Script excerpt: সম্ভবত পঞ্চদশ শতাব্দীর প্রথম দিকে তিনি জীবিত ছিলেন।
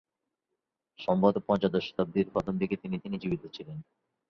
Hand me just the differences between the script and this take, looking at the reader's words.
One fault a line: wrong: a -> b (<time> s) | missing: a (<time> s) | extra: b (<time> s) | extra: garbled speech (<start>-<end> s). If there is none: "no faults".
extra: তিনি (3.0 s)